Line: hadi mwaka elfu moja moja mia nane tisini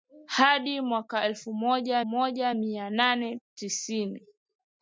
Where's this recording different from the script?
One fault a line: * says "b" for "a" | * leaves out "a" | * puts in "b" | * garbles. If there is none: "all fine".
all fine